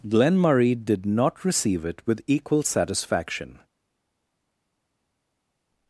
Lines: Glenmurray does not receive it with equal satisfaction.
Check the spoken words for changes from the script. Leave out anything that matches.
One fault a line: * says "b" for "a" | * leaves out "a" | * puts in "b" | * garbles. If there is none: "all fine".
* says "did" for "does"